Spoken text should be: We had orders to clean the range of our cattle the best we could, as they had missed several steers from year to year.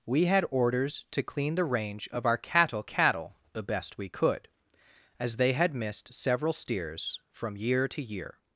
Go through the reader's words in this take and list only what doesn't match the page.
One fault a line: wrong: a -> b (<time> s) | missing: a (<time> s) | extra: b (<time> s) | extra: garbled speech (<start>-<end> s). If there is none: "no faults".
extra: cattle (2.8 s)